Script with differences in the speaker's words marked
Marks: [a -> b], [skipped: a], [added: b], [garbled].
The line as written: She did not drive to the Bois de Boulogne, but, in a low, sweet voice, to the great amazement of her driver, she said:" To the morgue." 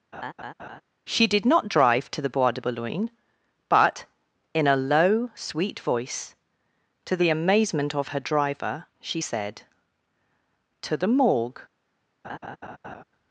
She did not drive to the Bois de Boulogne, but, in a low, sweet voice, to the [skipped: great] amazement of her driver, she said:" To the morgue."